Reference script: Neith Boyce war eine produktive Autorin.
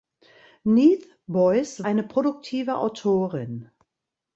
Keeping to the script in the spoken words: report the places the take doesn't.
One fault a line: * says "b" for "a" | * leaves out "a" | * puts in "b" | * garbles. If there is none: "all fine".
* leaves out "war"